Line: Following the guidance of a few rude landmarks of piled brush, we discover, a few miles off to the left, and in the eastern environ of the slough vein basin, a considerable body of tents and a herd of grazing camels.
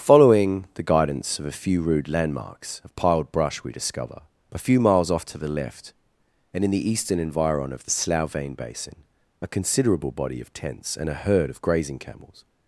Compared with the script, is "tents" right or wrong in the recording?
right